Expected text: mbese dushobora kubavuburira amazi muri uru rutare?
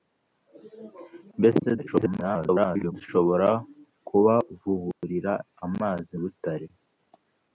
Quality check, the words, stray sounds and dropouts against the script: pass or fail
fail